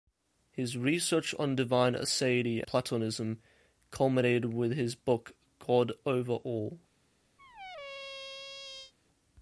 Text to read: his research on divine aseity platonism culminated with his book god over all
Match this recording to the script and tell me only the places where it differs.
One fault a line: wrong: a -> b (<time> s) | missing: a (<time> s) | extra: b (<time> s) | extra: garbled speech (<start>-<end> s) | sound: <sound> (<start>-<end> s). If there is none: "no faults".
sound: squeak (7.4-8.9 s)